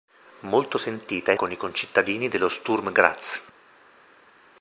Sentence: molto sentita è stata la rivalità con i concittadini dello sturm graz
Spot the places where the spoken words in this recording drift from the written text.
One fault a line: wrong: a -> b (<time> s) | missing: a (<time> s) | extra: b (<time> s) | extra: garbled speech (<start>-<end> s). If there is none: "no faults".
missing: stata la rivalità (1.4 s)